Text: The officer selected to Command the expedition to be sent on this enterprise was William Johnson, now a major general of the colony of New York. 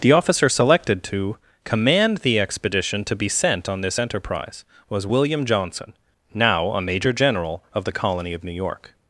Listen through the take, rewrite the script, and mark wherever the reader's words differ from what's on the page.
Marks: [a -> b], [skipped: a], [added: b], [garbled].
The officer selected to Command the expedition to be sent on this enterprise was William Johnson, now a major general of the colony of New York.